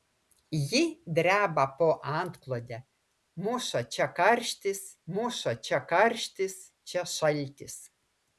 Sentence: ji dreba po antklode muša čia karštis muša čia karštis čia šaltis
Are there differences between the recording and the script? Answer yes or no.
no